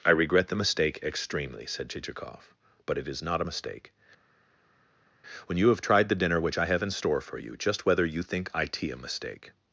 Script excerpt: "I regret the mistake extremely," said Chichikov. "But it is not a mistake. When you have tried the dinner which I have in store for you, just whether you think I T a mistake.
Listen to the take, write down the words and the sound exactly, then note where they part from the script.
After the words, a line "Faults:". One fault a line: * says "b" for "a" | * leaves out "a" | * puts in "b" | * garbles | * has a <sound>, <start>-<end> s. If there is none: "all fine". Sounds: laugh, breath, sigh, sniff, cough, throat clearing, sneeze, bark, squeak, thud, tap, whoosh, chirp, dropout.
"I regret the mistake extremely," said Chichikov. "But it is not a mistake. When you have tried the dinner which I have in store for you, just whether you think I T a mistake.
Faults:
all fine